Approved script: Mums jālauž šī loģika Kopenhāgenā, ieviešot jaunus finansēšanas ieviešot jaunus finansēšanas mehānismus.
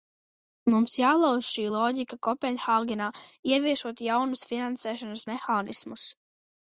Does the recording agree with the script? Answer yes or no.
no